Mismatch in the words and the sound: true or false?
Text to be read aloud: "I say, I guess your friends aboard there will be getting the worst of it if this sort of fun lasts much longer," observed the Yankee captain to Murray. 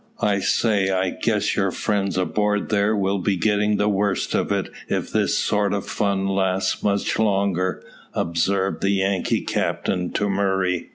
false